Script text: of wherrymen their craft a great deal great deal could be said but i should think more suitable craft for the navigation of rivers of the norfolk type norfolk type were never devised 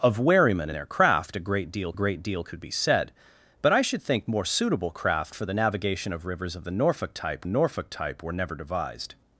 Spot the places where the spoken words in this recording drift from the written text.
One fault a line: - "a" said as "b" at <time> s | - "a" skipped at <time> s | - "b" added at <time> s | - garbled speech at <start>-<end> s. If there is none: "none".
none